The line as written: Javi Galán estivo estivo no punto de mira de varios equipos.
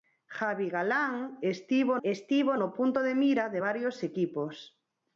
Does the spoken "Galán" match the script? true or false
true